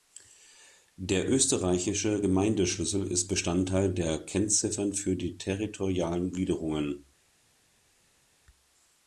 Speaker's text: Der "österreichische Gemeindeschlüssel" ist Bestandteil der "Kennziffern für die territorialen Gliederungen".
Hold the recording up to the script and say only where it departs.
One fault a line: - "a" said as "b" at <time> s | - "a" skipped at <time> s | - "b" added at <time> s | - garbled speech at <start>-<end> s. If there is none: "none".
none